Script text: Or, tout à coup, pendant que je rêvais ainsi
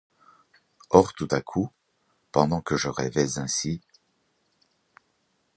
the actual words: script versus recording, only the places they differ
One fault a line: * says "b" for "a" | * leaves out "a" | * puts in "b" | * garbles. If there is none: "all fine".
all fine